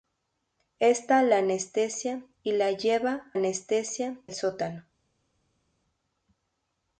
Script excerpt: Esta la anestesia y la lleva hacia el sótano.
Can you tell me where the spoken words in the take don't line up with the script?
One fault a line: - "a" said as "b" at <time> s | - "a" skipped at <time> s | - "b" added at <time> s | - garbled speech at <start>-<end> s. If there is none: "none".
- "hacia" said as "anestesia" at 3.3 s